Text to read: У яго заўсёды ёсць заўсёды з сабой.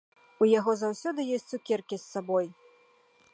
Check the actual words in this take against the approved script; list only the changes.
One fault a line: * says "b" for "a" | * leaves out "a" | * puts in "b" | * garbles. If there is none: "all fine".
* says "цукеркі" for "заўсёды"